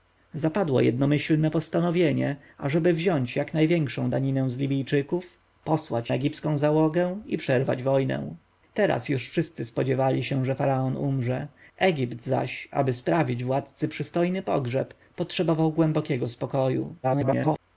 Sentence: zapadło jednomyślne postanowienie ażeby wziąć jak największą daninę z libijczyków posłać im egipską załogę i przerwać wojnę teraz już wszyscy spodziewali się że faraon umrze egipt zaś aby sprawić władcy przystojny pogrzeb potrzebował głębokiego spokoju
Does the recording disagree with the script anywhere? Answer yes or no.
yes